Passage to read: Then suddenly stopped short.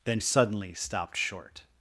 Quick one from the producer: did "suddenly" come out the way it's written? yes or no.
yes